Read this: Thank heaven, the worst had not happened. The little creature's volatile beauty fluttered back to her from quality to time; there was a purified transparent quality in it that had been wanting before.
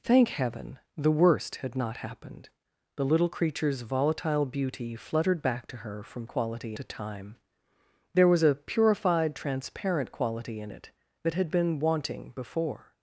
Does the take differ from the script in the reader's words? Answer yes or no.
no